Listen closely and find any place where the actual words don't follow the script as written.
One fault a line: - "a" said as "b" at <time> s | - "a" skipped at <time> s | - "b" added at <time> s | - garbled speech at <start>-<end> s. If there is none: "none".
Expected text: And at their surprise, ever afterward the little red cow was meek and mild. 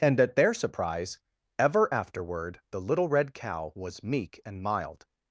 none